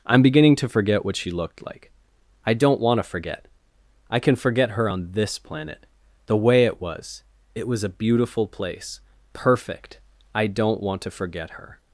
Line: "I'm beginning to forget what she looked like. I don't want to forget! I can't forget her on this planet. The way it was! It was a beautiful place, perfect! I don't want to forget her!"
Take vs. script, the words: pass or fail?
fail